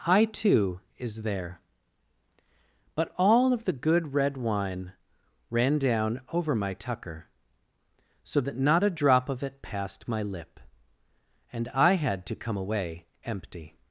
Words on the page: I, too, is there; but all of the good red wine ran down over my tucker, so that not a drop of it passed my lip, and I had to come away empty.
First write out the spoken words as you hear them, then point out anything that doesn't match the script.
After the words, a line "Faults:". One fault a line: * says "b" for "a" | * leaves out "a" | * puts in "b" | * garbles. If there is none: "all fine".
I, too, is there; but all of the good red wine ran down over my tucker, so that not a drop of it passed my lip, and I had to come away empty.
Faults:
all fine